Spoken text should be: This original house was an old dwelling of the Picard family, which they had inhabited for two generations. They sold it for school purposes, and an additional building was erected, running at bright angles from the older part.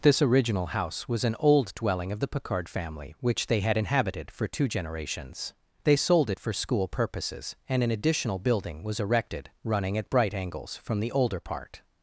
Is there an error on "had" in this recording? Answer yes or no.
no